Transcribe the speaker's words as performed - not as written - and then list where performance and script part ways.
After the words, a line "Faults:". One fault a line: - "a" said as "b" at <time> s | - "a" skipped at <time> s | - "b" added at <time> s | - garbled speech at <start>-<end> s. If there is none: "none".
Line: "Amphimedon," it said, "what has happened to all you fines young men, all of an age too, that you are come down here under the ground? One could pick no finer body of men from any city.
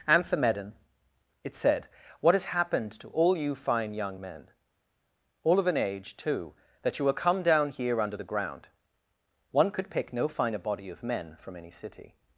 "Amphimedon," it said, "what has happened to all you fine young men, all of an age too, that you are come down here under the ground? One could pick no finer body of men from any city.
Faults:
- "fines" said as "fine" at 3.5 s